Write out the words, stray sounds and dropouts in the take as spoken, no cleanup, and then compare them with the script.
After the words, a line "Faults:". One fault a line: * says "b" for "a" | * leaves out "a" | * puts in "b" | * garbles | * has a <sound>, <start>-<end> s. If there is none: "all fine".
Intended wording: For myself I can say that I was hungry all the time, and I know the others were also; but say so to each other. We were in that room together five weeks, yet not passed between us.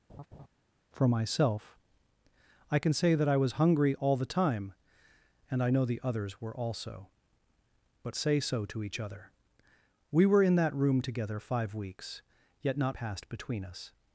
For myself I can say that I was hungry all the time, and I know the others were also; but say so to each other. We were in that room together five weeks, yet not passed between us.
Faults:
* has a laugh, 0.1-0.5 s